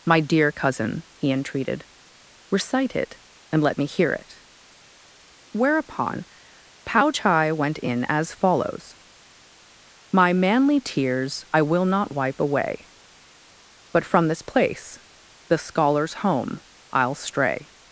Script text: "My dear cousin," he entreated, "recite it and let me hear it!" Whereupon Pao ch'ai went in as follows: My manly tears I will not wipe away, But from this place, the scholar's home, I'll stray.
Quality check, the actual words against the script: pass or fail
pass